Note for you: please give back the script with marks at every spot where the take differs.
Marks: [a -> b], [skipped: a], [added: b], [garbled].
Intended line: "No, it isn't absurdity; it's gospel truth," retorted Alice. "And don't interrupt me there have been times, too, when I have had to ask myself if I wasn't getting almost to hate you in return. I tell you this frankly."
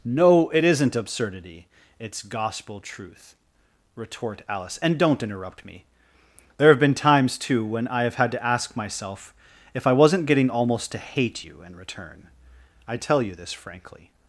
"No, it isn't absurdity; it's gospel truth," [retorted -> retort] Alice. "And don't interrupt me there have been times, too, when I have had to ask myself if I wasn't getting almost to hate you in return. I tell you this frankly."